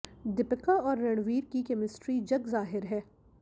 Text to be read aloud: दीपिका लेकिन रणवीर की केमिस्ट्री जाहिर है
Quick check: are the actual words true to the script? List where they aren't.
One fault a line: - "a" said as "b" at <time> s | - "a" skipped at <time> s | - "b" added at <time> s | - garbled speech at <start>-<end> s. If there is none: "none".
- "लेकिन" said as "और" at 0.7 s
- "जग" added at 2.2 s